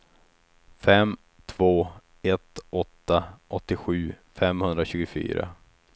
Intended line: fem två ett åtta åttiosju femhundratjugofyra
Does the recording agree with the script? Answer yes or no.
yes